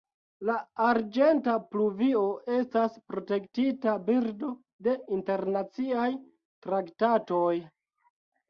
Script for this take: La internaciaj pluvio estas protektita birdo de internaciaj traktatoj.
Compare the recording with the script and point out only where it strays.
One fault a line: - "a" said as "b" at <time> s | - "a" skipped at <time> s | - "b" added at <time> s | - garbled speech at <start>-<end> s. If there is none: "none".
- "internaciaj" said as "arĝenta" at 0.8 s